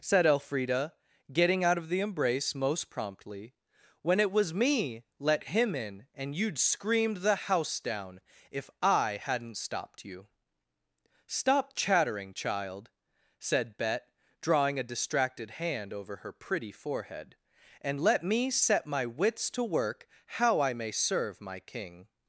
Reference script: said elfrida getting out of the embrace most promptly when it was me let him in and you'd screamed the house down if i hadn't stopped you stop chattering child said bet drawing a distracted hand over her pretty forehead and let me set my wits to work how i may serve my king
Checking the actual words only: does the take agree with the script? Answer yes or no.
yes